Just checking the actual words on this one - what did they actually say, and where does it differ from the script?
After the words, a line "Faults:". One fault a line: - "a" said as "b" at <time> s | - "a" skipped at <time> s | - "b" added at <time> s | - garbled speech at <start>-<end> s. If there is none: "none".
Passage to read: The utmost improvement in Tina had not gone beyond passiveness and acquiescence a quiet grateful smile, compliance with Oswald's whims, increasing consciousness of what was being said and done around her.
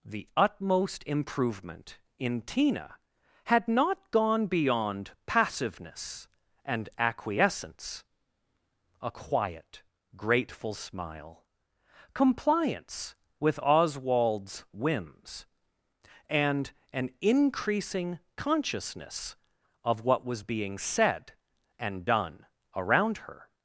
The utmost improvement in Tina had not gone beyond passiveness and acquiescence a quiet grateful smile, compliance with Oswald's whims, and an increasing consciousness of what was being said and done around her.
Faults:
- "and an" added at 16.3 s